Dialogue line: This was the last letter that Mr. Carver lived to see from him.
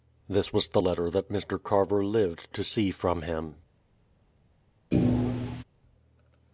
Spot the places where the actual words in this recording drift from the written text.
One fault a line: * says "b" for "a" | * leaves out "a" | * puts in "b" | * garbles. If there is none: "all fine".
* leaves out "last"